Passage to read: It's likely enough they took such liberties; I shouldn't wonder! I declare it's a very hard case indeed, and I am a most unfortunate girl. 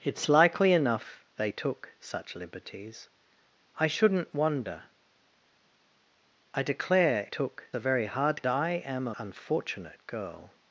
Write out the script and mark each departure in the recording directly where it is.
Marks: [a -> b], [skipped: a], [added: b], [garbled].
It's likely enough they took such liberties; I shouldn't wonder! I declare [it's -> took] a very hard [skipped: case indeed, and] I am a [skipped: most] unfortunate girl.